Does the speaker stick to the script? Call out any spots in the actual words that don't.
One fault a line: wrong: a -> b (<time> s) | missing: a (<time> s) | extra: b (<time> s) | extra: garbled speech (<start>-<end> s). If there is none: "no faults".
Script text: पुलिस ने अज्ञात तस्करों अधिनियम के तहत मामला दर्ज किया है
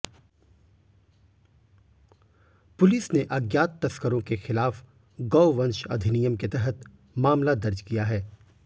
extra: के खिलाफ गौवंश (4.2 s)